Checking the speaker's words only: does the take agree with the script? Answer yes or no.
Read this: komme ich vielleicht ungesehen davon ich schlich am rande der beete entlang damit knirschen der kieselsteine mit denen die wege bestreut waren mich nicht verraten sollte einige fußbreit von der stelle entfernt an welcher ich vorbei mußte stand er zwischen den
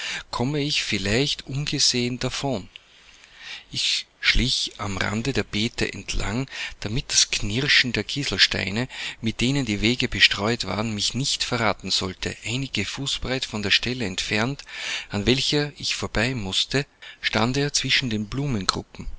no